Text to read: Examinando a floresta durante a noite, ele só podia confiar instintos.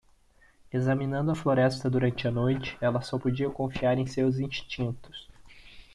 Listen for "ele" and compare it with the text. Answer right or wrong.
wrong